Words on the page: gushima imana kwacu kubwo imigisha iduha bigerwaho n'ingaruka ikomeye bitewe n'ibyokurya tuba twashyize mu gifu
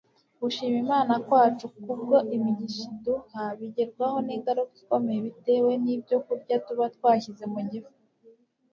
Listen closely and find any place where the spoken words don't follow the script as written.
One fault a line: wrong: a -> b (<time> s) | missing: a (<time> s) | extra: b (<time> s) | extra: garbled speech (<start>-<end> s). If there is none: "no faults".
no faults